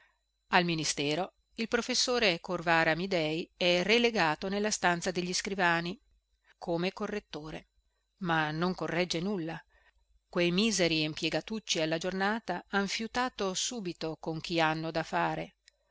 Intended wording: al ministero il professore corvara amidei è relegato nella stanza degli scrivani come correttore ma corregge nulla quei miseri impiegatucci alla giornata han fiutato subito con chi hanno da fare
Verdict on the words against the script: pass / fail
fail